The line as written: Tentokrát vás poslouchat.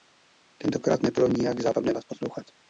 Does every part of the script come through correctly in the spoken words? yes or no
no